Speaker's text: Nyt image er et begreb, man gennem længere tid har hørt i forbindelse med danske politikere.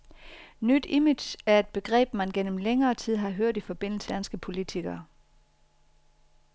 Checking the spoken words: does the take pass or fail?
fail